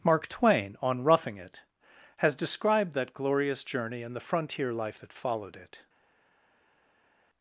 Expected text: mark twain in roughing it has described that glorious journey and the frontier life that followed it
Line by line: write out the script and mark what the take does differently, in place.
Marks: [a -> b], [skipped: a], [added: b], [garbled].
mark twain [in -> on] roughing it has described that glorious journey and the frontier life that followed it